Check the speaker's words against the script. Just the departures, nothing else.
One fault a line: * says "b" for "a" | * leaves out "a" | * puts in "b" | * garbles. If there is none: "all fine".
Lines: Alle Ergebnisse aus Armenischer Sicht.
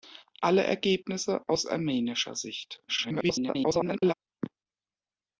* garbles